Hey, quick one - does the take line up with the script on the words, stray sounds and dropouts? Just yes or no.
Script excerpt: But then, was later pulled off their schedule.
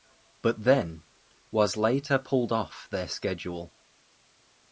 yes